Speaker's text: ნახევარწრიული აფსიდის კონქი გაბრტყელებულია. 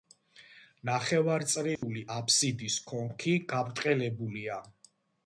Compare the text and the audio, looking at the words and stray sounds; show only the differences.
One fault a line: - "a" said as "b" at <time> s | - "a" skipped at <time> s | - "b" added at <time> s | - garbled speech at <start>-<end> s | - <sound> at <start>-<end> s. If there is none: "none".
- dropout at 1.8-1.8 s